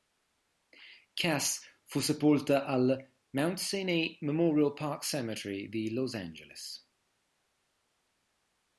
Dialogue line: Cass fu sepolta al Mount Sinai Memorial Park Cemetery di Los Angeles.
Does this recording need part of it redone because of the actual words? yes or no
no